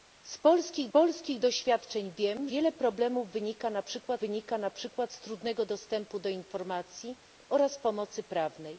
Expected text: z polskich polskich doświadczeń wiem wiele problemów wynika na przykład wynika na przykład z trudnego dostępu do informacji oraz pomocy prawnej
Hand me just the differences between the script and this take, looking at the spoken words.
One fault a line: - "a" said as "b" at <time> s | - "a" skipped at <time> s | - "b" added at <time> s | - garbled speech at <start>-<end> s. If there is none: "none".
none